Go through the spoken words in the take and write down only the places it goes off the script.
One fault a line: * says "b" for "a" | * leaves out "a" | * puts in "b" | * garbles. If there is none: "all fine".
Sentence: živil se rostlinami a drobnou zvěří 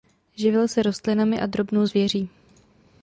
all fine